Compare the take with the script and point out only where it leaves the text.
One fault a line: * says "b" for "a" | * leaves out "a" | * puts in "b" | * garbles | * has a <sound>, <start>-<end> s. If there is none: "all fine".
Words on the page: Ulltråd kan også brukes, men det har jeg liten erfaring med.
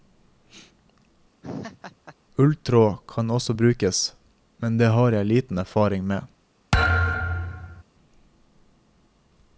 * has a laugh, 1.4-2.2 s
* has a thud, 6.7-7.8 s